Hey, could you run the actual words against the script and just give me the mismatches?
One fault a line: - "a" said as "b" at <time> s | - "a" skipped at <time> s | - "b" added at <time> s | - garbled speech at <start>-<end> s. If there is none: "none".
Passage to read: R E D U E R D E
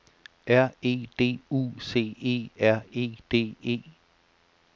- "C" added at 1.8 s
- "E" added at 2.9 s